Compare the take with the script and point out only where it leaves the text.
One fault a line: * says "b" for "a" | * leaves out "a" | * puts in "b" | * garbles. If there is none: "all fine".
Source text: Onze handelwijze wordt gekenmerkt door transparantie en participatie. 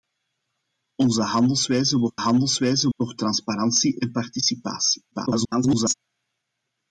* says "handelwijze" for "gekenmerkt"
* garbles